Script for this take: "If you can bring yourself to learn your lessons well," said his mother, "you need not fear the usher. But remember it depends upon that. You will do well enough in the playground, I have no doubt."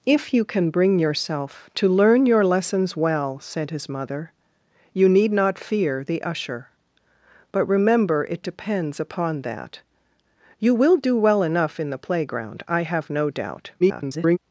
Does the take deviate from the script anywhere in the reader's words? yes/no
yes